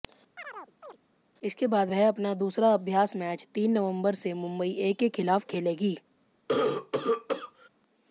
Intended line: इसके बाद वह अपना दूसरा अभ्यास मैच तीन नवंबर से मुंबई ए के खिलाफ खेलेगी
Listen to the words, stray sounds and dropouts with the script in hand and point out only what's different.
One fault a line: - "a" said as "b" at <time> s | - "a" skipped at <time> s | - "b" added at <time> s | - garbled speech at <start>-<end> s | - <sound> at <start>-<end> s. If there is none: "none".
- chirp at 0.4-1.0 s
- cough at 6.5-7.7 s